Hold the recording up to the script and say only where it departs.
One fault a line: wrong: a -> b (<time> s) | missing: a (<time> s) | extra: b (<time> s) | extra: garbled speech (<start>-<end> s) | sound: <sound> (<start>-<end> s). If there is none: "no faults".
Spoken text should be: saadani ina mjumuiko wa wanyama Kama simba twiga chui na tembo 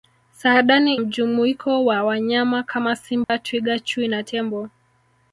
missing: ina (0.9 s)
sound: dropout (3.2-3.3 s)